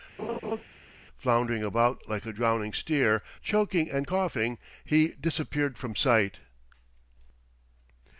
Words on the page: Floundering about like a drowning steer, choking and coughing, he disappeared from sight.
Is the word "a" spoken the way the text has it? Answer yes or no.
yes